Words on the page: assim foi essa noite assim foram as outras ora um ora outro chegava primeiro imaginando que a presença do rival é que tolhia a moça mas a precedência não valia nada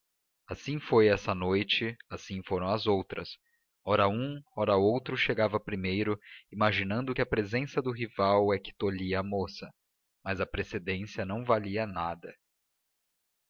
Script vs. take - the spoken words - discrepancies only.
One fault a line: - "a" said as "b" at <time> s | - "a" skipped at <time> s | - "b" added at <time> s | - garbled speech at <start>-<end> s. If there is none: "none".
none